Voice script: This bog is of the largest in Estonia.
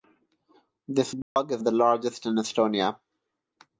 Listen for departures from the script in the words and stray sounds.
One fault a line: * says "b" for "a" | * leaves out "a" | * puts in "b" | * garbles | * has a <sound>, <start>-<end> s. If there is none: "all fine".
* has a dropout, 1.2-1.4 s